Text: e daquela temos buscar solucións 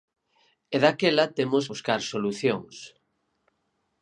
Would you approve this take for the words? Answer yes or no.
yes